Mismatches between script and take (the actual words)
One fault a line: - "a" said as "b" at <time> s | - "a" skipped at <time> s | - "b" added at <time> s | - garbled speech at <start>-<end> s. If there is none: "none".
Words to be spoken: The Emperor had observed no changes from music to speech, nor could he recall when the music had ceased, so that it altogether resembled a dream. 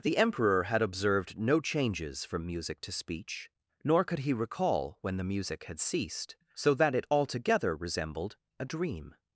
none